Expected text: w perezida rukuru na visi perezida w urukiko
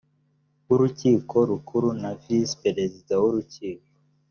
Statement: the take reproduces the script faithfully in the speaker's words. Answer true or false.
false